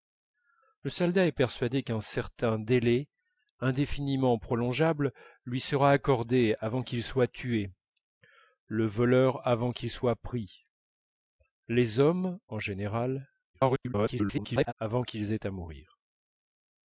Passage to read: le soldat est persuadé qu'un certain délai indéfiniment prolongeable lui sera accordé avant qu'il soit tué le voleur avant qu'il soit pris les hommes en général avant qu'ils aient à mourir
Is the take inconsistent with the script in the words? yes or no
yes